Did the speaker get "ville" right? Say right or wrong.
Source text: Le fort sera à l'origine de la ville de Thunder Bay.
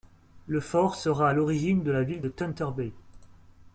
right